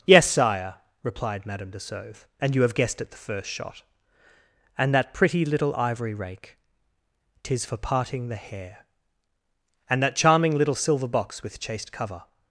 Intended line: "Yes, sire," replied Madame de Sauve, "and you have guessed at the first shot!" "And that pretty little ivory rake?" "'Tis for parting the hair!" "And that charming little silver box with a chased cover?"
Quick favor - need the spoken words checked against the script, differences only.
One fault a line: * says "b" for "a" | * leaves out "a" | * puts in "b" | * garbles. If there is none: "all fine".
* leaves out "a"